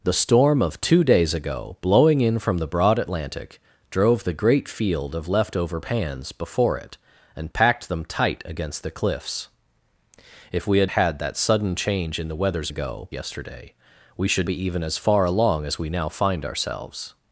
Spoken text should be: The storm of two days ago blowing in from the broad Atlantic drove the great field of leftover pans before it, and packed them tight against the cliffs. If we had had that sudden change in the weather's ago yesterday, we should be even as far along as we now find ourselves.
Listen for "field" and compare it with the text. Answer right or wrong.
right